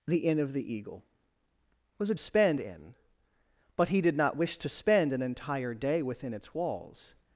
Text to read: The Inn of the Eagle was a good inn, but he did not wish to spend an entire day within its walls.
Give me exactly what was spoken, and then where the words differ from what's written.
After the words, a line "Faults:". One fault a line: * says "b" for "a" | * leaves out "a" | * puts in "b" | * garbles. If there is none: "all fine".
The Inn of the Eagle was a spend inn, but he did not wish to spend an entire day within its walls.
Faults:
* says "spend" for "good"